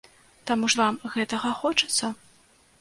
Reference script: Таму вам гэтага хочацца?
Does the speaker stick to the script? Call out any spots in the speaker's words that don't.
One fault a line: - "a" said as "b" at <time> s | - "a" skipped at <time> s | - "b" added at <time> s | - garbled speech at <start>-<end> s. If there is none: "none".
none